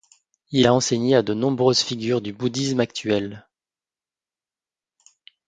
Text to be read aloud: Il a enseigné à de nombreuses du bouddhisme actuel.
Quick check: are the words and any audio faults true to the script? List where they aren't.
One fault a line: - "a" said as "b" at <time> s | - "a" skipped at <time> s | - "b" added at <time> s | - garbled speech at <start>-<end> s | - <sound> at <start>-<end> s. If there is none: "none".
- "figures" added at 1.8 s